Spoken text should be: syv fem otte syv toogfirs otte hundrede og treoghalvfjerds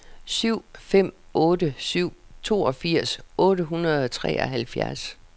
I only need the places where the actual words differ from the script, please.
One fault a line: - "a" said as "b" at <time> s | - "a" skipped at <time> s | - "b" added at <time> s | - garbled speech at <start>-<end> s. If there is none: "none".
none